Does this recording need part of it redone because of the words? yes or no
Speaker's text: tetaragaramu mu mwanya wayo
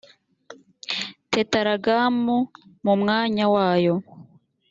no